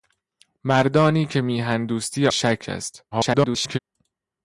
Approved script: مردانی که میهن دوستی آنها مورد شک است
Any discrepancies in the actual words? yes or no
yes